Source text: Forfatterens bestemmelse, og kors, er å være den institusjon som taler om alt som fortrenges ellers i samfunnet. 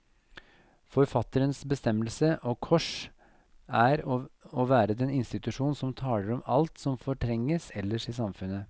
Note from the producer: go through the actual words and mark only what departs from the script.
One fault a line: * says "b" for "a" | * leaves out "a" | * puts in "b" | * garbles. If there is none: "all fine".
all fine